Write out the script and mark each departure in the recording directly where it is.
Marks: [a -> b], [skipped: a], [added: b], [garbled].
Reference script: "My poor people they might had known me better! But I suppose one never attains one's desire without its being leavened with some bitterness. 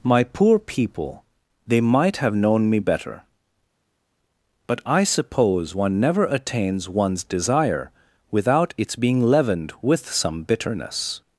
"My poor people they might [had -> have] known me better! But I suppose one never attains one's desire without its being leavened with some bitterness.